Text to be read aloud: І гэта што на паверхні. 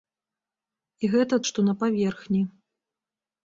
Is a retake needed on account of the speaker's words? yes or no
no